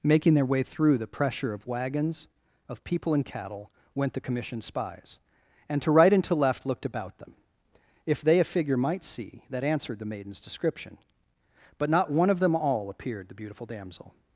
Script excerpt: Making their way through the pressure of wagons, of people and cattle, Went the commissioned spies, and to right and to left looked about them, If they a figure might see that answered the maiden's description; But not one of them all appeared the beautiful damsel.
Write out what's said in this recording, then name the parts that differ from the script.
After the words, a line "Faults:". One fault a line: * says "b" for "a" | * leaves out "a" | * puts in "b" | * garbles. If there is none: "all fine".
Making their way through the pressure of wagons, of people and cattle, Went the commissioned spies, and to right and to left looked about them, If they a figure might see that answered the maiden's description; But not one of them all appeared the beautiful damsel.
Faults:
all fine